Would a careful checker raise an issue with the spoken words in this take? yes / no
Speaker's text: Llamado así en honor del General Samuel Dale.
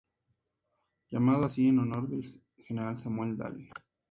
no